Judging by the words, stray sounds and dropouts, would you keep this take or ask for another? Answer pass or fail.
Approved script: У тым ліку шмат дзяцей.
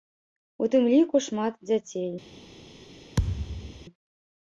fail